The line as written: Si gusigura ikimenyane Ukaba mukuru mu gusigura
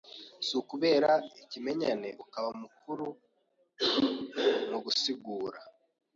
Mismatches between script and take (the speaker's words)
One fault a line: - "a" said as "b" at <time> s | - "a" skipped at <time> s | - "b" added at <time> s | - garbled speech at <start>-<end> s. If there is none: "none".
- "gusigura" said as "ukubera" at 0.6 s